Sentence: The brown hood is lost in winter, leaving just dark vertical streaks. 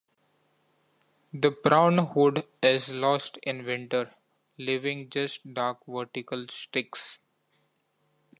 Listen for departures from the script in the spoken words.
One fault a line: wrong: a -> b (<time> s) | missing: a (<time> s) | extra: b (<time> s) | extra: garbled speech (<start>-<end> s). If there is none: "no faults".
no faults